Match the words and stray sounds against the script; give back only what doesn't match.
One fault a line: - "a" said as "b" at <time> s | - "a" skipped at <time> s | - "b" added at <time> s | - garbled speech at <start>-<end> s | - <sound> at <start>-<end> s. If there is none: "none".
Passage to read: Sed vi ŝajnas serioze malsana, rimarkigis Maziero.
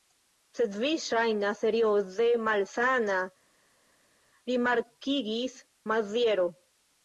none